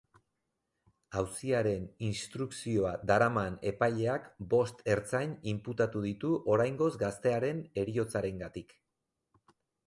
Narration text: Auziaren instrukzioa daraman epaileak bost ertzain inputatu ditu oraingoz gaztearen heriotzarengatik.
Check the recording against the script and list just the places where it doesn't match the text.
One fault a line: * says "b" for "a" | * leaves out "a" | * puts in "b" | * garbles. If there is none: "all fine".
all fine